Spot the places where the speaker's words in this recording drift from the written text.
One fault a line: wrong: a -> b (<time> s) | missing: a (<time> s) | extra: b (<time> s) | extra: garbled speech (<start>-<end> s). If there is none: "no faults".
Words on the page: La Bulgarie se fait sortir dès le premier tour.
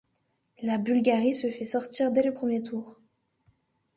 no faults